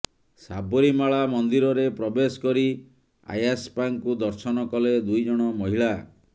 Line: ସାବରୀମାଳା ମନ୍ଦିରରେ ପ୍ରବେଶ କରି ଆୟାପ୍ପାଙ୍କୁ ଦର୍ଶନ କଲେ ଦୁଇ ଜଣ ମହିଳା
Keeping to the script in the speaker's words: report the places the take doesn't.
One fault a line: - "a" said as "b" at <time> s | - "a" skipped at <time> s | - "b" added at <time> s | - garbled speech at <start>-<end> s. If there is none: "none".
none